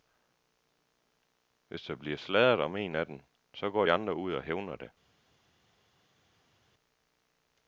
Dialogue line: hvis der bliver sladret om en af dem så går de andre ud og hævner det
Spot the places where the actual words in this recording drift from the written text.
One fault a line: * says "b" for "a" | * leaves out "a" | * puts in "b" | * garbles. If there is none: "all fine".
all fine